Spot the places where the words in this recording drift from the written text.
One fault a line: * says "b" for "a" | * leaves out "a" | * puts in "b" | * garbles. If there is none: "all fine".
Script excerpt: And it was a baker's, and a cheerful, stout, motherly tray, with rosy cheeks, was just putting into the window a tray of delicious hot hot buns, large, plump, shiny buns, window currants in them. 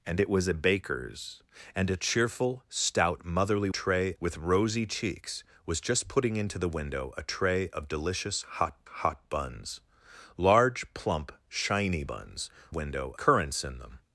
all fine